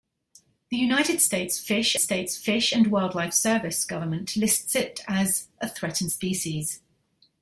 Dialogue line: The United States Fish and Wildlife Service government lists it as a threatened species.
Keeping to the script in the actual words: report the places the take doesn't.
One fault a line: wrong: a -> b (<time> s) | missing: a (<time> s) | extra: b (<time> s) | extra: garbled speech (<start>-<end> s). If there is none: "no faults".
extra: States Fish (2.0 s)